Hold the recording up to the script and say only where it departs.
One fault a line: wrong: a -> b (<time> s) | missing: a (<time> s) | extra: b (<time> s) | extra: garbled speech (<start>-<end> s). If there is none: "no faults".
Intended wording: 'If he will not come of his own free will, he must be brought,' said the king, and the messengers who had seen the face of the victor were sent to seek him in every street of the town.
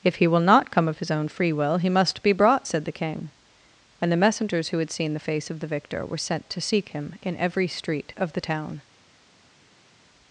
no faults